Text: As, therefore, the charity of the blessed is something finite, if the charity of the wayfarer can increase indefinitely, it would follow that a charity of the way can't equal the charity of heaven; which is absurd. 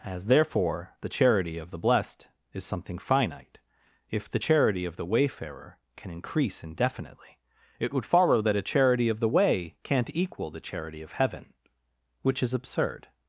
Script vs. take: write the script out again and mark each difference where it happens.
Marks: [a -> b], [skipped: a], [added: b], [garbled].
As, therefore, the charity of the blessed is something finite, if the charity of the wayfarer can increase indefinitely, it would follow that a charity of the way can't equal the charity of heaven; which is absurd.